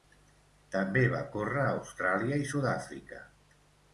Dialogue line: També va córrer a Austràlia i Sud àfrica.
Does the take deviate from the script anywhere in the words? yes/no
no